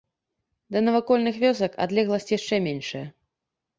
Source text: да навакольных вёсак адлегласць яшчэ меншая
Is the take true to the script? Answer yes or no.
yes